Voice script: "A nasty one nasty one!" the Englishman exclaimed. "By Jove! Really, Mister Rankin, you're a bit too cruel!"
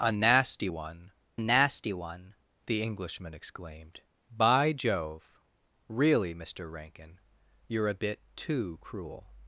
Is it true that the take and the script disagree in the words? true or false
false